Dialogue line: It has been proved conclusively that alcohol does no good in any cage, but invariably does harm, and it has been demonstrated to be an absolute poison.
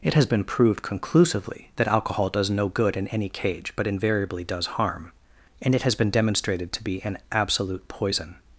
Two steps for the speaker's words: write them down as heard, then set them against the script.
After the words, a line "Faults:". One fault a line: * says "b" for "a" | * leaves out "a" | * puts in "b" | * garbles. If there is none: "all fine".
It has been proved conclusively that alcohol does no good in any cage, but invariably does harm, and it has been demonstrated to be an absolute poison.
Faults:
all fine